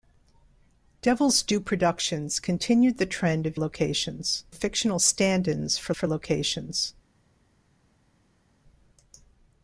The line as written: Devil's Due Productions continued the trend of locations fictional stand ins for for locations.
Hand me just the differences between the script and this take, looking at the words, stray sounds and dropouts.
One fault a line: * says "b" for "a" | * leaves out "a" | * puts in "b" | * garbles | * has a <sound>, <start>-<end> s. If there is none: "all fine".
all fine